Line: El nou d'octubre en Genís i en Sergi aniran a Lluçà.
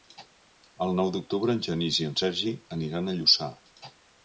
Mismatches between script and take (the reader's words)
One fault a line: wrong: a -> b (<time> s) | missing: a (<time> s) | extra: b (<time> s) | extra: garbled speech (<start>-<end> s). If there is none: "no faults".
no faults